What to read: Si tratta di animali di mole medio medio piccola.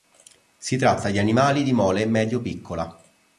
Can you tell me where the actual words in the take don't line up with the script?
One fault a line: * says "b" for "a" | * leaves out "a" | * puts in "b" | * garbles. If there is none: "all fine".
* leaves out "medio"